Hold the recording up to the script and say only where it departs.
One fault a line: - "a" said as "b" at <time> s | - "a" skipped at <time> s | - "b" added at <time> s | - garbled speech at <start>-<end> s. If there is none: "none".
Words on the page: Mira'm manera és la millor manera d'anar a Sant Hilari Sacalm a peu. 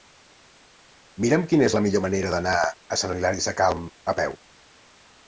- "manera" said as "quina" at 1.5 s